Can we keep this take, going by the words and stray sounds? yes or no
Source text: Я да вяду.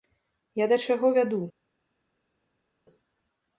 no